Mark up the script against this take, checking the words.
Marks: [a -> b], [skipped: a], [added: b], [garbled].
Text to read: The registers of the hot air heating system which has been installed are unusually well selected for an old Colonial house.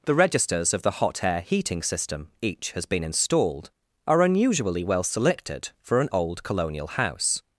The registers of the hot air heating system [which -> each] has been installed are unusually well selected for an old Colonial house.